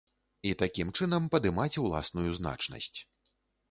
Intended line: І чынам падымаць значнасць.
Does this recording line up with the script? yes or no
no